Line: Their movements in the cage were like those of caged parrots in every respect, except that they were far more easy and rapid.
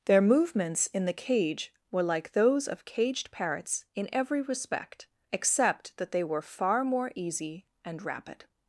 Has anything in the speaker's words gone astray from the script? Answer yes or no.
no